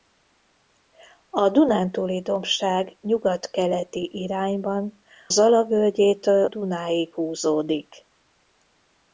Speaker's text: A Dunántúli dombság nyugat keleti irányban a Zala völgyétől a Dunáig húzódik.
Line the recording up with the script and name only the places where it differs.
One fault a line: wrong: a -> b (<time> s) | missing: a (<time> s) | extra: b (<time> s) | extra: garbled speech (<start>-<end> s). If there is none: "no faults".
missing: a (5.0 s)
missing: a (6.4 s)